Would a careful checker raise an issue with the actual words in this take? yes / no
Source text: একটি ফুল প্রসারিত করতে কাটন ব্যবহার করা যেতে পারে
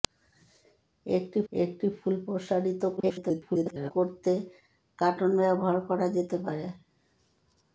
yes